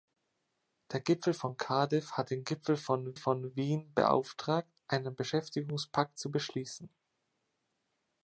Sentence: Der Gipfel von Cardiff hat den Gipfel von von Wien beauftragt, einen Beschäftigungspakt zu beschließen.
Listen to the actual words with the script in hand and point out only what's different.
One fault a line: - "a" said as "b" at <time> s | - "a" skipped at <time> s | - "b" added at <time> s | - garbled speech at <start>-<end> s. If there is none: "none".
none